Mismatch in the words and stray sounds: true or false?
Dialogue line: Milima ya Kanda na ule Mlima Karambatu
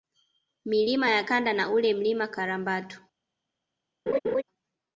true